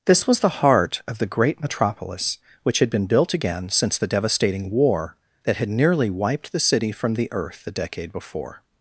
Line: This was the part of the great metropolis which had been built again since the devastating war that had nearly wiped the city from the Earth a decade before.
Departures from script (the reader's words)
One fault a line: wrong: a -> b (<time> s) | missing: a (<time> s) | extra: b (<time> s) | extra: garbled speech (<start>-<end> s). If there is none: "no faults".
wrong: part -> heart (0.5 s)